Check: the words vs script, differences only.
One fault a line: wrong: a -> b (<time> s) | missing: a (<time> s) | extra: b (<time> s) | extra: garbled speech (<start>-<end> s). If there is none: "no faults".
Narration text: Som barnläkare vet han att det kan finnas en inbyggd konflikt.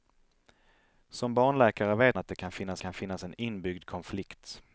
missing: han (2.2 s)
extra: kan finnas (2.8 s)